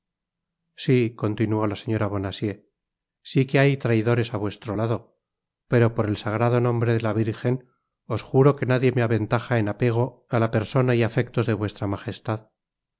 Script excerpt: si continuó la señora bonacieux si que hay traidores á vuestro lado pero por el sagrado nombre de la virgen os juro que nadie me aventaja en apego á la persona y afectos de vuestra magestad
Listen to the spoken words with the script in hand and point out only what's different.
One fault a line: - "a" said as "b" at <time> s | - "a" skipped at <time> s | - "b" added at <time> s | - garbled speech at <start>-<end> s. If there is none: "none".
none